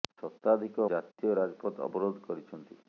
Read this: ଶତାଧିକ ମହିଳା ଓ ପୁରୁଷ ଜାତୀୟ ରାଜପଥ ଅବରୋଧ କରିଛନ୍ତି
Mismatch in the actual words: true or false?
true